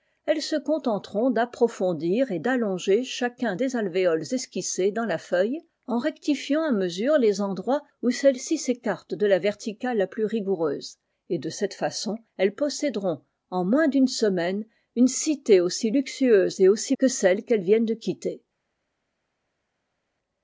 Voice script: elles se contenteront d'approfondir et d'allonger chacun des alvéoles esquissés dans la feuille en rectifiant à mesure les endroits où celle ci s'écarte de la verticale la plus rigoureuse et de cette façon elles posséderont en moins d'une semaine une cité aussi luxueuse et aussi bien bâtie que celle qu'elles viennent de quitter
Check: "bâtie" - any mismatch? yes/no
yes